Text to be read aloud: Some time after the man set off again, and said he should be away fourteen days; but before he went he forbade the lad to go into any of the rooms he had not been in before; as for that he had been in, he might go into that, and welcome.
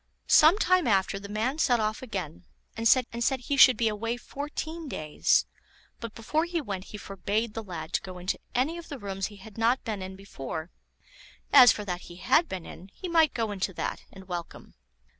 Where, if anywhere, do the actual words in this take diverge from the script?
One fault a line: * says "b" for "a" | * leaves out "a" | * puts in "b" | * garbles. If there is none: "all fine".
* puts in "and said"